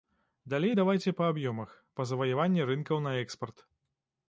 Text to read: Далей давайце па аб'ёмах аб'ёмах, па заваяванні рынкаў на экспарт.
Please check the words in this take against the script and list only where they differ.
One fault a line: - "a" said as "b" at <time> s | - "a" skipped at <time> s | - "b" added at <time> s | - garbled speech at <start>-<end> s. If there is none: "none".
- "аб'ёмах" skipped at 1.7 s